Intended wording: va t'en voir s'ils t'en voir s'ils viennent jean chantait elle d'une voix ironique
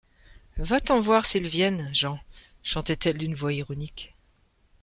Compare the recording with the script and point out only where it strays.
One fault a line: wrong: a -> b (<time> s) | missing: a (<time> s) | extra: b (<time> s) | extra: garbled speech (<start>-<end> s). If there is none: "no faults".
missing: t'en voir s'ils (1.5 s)